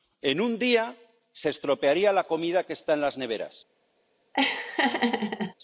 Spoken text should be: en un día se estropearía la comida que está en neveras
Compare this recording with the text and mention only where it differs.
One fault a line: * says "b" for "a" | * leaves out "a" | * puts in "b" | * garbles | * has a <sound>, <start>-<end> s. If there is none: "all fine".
* puts in "las"
* has a laugh, 4.3-5.5 s